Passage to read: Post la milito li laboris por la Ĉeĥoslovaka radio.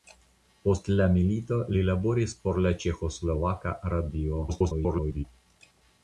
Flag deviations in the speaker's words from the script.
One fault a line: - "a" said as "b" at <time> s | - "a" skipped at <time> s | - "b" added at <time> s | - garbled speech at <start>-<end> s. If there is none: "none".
- garbled speech at 4.5-5.2 s